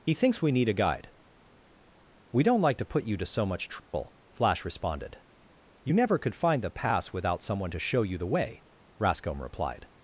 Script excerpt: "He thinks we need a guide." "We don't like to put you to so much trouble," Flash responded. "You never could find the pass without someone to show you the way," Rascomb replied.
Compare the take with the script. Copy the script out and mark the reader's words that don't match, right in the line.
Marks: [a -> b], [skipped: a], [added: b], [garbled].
"He thinks we need a guide." "We don't like to put you to so much trouble," Flash responded. "You never could find the pass without someone to show you the way," Rascomb replied.